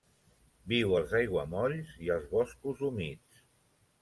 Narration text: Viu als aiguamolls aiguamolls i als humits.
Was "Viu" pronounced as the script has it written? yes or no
yes